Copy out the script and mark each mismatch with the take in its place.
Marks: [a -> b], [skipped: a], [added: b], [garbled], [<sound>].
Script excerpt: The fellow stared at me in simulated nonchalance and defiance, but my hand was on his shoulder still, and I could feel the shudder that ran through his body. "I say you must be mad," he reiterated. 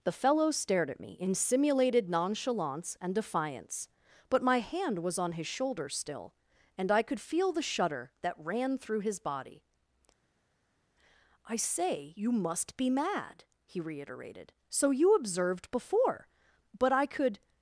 The fellow stared at me in simulated nonchalance and defiance, but my hand was on his shoulder still, and I could feel the shudder that ran through his body. "I say you must be mad," he reiterated. [added: So you observed before but I could]